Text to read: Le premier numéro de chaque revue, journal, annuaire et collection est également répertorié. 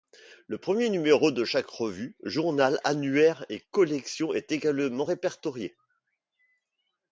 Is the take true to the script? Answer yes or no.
yes